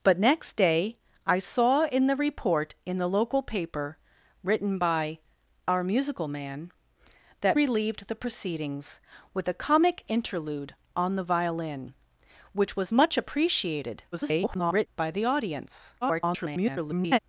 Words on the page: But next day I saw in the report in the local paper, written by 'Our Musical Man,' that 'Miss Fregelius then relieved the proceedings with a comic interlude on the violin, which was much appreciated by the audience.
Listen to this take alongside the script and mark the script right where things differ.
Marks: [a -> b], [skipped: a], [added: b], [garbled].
But next day I saw in the report in the local paper, written by 'Our Musical Man,' that [skipped: 'Miss Fregelius then] relieved the proceedings with a comic interlude on the violin, which was much appreciated [garbled] by the audience. [garbled]